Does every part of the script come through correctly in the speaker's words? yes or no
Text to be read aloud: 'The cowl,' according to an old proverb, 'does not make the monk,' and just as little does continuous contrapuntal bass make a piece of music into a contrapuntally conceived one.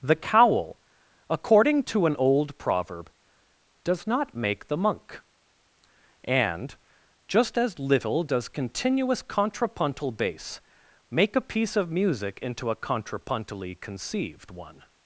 yes